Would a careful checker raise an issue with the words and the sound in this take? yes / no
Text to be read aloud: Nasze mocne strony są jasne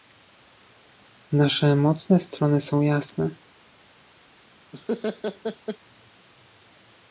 yes